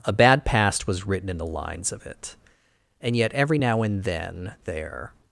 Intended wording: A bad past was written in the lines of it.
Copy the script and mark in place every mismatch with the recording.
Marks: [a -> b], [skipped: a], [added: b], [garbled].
A bad past was written in the lines of it. [added: And yet every now and then there]